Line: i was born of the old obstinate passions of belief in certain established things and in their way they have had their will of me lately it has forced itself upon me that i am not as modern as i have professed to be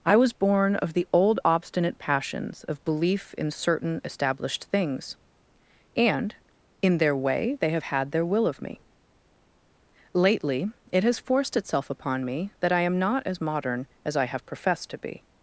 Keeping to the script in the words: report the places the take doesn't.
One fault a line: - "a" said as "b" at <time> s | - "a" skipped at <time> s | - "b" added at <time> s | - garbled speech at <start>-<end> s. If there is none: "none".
none